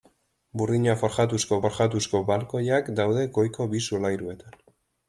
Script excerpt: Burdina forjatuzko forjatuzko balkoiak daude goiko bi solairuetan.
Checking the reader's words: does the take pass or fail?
pass